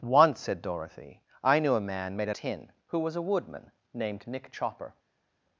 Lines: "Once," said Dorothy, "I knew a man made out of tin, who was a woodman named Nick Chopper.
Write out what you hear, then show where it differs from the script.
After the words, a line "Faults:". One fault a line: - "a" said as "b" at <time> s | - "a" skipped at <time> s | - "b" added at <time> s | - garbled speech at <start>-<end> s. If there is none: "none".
"Once," said Dorothy, "I knew a man made out tin, who was a woodman named Nick Chopper.
Faults:
- "of" skipped at 2.4 s